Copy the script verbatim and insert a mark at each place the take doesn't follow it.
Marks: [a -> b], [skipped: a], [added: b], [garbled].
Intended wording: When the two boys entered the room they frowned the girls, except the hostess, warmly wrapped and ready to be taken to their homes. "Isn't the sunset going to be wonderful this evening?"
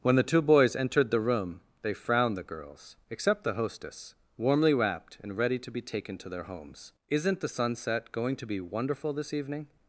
When the two boys entered the room they frowned the girls, except the hostess, warmly wrapped and ready to be taken to their homes. "Isn't the sunset going to be wonderful this evening?"